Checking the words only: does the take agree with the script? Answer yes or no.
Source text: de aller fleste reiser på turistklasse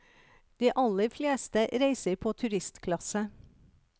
yes